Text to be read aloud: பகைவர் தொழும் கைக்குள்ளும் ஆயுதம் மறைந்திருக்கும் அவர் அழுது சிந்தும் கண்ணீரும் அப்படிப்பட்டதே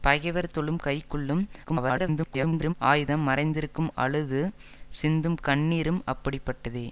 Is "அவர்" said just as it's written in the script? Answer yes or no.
no